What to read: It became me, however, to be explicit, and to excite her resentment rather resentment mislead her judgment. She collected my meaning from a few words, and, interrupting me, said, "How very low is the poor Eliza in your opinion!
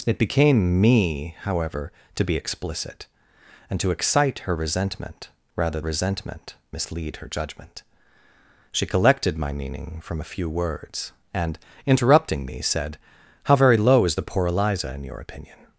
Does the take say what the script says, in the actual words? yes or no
yes